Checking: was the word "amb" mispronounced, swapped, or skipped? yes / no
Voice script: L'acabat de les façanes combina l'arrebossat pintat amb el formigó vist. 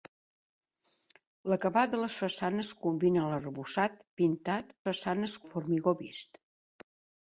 yes